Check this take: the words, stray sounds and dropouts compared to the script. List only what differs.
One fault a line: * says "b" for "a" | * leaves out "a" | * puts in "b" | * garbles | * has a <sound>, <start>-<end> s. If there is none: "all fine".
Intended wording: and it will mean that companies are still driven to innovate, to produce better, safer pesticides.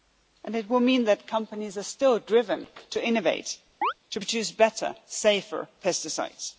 * has a chirp, 3.8-3.9 s